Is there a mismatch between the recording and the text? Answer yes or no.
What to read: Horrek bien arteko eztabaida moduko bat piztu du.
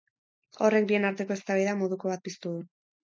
no